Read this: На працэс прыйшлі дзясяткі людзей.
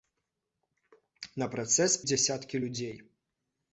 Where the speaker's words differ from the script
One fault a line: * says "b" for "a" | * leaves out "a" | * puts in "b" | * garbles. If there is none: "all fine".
* leaves out "прыйшлі"